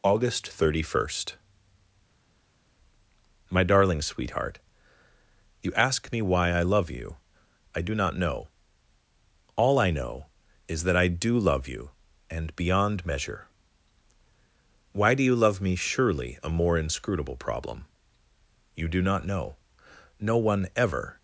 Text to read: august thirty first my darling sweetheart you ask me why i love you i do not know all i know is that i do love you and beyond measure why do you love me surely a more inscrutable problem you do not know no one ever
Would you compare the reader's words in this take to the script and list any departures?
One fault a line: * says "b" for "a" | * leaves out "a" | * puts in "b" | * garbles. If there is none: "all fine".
all fine